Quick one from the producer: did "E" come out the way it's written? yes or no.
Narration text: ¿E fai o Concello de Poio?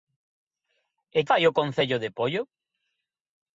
yes